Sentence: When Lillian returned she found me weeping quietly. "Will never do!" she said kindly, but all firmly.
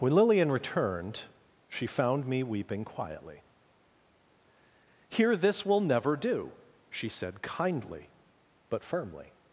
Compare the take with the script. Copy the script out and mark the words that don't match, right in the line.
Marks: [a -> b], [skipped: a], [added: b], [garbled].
When Lillian returned she found me weeping quietly. [added: Here this] "Will never do!" she said kindly, but [skipped: all] firmly.